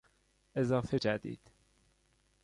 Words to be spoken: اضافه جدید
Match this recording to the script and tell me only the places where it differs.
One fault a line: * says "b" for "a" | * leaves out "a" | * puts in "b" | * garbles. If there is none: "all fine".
all fine